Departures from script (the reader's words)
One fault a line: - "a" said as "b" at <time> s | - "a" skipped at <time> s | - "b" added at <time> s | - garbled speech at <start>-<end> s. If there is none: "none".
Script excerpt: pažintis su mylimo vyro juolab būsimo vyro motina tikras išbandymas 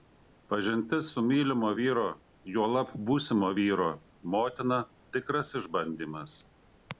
none